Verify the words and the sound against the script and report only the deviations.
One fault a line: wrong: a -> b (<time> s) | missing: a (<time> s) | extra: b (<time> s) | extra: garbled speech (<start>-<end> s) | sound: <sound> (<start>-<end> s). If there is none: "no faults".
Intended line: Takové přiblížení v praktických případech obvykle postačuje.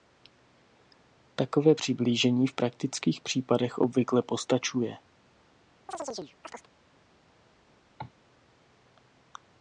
sound: chirp (5.9-6.7 s)
sound: cough (8.0-8.1 s)